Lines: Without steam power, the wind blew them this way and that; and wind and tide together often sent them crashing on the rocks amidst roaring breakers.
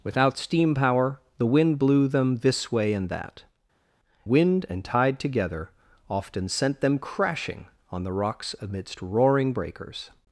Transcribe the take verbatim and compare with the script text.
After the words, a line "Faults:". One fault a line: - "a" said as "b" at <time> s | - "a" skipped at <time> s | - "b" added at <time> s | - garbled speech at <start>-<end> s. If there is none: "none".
Without steam power, the wind blew them this way and that; wind and tide together often sent them crashing on the rocks amidst roaring breakers.
Faults:
- "and" skipped at 3.4 s